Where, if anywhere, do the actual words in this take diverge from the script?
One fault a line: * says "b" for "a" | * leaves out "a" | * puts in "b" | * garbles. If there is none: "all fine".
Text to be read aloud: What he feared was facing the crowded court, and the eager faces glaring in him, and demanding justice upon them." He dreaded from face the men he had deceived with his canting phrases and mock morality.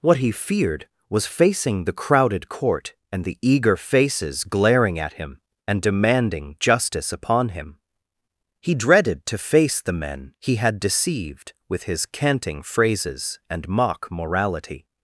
* says "at" for "in"
* says "him" for "them"
* says "to" for "from"